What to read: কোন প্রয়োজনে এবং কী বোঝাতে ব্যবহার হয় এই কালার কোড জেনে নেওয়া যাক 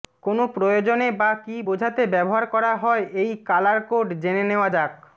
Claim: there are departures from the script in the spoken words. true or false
true